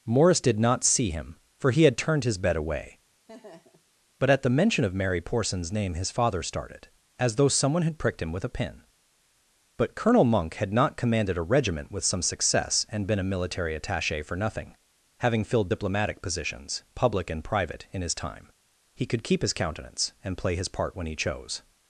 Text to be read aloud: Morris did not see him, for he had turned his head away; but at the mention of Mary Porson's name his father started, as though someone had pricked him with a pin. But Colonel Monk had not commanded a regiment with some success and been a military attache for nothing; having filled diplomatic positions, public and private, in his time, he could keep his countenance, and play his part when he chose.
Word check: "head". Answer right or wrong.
wrong